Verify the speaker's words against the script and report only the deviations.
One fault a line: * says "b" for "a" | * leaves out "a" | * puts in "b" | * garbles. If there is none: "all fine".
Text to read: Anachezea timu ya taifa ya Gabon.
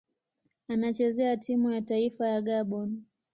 all fine